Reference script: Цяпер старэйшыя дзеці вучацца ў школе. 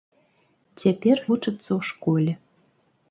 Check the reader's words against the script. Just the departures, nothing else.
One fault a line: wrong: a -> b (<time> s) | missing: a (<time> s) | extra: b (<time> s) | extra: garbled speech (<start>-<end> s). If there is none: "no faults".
missing: старэйшыя дзеці (1.2 s)